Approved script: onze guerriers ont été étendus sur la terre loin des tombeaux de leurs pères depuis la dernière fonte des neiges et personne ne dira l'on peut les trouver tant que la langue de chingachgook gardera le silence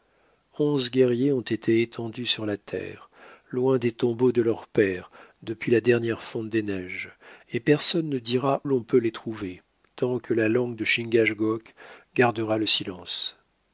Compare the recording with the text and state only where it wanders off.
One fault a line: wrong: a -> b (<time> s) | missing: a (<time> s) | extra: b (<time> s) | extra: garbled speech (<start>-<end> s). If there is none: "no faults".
no faults